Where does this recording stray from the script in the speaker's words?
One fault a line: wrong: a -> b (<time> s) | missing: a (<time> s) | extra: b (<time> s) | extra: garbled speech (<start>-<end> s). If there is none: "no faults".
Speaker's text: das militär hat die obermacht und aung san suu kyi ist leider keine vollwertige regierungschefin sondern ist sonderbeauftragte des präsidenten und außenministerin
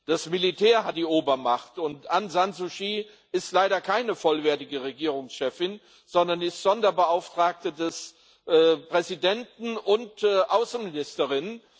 no faults